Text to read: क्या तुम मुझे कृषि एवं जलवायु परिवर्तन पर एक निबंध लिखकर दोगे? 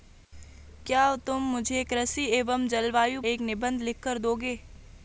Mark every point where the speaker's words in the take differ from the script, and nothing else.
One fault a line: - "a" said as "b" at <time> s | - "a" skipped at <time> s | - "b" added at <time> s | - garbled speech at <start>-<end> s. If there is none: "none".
- "परिवर्तन पर" skipped at 3.2 s